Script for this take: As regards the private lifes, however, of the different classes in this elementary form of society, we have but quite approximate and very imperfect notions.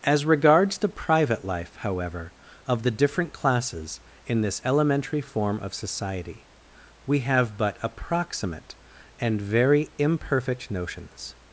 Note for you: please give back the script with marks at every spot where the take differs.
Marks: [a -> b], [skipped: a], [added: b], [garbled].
As regards the private [lifes, -> life] however, of the different classes in this elementary form of society, we have but [skipped: quite] approximate and very imperfect notions.